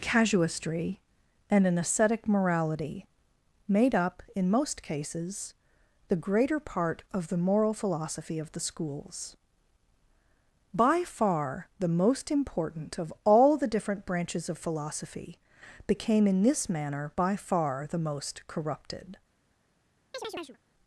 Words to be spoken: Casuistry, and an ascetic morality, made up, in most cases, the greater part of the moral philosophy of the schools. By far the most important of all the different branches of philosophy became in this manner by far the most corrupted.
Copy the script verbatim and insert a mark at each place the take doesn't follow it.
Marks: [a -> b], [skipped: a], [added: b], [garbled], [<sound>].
Casuistry, and an ascetic morality, made up, in most cases, the greater part of the moral philosophy of the schools. By far the most important of all the different branches of philosophy became in this manner by far the most corrupted. [chirp]